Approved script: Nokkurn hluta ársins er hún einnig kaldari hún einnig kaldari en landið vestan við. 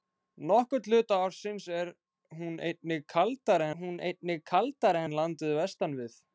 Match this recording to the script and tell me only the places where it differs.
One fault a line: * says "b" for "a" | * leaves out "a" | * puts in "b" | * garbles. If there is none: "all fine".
all fine